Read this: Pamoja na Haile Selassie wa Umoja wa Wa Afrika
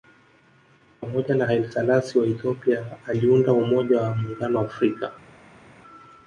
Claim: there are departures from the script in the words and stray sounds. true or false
true